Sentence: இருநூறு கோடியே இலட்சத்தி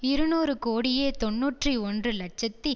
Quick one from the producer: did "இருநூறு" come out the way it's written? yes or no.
yes